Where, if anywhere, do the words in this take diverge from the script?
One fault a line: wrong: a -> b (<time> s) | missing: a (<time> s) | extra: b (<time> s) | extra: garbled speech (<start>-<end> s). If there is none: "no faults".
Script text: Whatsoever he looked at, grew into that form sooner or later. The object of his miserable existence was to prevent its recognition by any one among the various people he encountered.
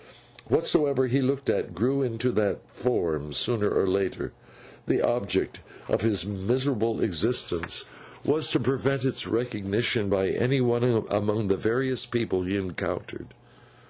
no faults